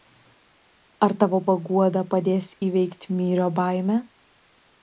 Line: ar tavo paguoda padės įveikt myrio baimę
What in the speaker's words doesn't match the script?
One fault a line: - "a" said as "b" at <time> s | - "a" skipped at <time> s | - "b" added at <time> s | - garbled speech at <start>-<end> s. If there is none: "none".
none